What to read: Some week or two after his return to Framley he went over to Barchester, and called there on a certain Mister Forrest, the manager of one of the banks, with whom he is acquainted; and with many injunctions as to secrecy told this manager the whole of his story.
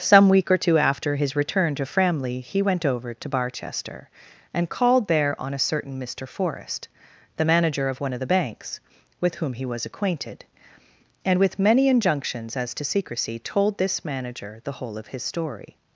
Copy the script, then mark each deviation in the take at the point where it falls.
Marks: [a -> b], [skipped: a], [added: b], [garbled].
Some week or two after his return to Framley he went over to Barchester, and called there on a certain Mister Forrest, the manager of one of the banks, with whom he [is -> was] acquainted; and with many injunctions as to secrecy told this manager the whole of his story.